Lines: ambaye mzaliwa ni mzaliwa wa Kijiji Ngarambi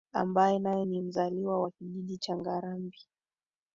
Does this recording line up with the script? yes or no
no